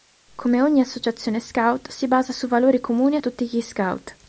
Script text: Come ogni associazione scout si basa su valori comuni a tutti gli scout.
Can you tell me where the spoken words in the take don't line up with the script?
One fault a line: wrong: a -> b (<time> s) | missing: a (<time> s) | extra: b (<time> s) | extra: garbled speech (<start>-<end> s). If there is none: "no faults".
no faults